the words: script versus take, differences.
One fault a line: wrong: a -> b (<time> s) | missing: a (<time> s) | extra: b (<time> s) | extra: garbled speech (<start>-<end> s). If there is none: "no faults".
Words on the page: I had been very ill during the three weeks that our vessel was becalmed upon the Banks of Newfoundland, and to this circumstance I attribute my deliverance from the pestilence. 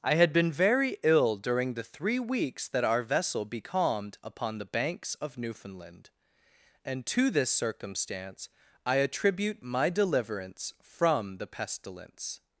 missing: was (3.5 s)